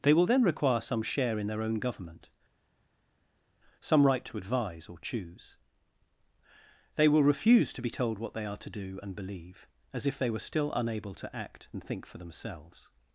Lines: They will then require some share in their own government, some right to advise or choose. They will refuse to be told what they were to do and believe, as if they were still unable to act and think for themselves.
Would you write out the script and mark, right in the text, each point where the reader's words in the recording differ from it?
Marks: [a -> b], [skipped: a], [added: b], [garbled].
They will then require some share in their own government, some right to advise or choose. They will refuse to be told what they [were -> are] to do and believe, as if they were still unable to act and think for themselves.